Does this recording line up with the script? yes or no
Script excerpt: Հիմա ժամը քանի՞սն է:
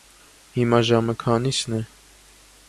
yes